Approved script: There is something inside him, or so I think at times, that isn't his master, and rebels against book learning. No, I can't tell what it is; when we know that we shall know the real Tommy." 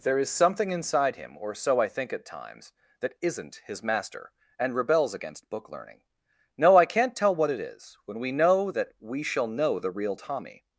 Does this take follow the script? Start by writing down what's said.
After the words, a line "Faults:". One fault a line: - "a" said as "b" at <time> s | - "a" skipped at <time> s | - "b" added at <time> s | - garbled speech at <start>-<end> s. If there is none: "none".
There is something inside him, or so I think at times, that isn't his master, and rebels against book learning. No, I can't tell what it is; when we know that we shall know the real Tommy."
Faults:
none